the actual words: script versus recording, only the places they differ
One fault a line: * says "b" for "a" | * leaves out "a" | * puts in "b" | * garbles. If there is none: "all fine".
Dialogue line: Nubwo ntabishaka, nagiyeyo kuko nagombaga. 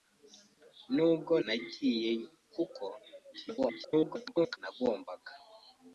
* leaves out "ntabishaka"
* garbles